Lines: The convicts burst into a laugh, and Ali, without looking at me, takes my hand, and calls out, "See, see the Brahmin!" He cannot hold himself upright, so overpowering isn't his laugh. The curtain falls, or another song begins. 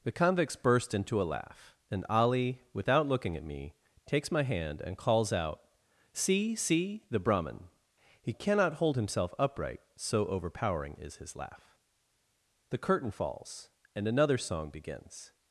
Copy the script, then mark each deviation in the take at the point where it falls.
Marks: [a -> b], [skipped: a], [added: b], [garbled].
The convicts burst into a laugh, and Ali, without looking at me, takes my hand, and calls out, "See, see the Brahmin!" He cannot hold himself upright, so overpowering [isn't -> is] his laugh. The curtain falls, [or -> and] another song begins.